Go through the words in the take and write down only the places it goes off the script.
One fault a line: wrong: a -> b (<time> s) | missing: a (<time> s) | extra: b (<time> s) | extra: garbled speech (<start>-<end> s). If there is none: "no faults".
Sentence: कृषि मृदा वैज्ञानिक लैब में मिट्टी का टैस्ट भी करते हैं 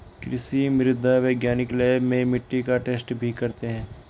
no faults